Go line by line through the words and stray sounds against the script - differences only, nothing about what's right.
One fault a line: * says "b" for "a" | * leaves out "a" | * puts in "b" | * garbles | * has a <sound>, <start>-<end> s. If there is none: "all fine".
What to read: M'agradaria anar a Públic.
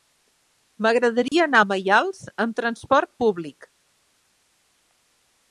* has a dropout, 1.3-1.3 s
* puts in "Maials amb trasport"